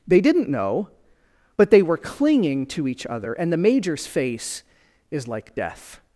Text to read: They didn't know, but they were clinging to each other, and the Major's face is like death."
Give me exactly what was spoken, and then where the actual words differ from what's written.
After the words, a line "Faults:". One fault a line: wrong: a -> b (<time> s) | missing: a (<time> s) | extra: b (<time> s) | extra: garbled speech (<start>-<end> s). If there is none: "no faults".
They didn't know, but they were clinging to each other, and the Major's face is like death."
Faults:
no faults